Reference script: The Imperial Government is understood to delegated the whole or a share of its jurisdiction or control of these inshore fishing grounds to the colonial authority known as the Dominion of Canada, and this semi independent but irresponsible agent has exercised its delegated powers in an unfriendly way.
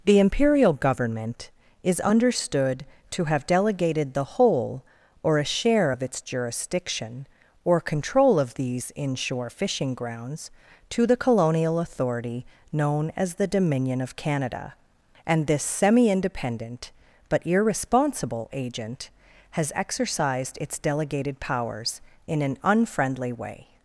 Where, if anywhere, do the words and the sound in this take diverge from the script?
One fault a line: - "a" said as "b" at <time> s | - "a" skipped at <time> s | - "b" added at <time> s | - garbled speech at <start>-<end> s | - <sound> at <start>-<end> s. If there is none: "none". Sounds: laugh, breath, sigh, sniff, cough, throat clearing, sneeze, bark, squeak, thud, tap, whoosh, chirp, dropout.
- "have" added at 3.2 s